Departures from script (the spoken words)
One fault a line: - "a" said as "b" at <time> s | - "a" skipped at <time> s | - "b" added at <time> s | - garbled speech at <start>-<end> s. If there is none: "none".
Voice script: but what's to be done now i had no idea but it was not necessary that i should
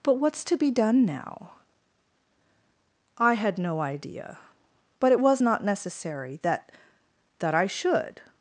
- "that" added at 7.4 s